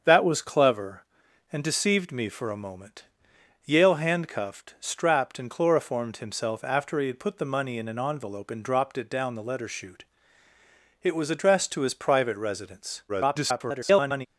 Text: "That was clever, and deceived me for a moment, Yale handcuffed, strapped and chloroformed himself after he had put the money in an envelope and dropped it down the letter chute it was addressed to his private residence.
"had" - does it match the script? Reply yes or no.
yes